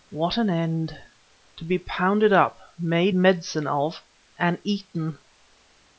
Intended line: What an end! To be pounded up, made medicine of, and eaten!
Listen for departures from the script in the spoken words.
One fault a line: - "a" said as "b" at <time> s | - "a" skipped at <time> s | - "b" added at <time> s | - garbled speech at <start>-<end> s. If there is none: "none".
none